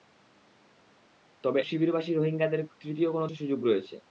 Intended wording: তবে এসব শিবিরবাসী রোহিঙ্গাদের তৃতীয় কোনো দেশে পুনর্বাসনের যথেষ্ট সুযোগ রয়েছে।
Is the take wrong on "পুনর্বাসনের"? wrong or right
wrong